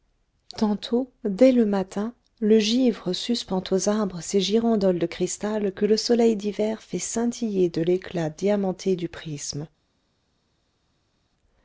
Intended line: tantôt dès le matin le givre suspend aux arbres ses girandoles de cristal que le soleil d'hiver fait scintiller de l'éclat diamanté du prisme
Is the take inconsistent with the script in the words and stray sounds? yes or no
no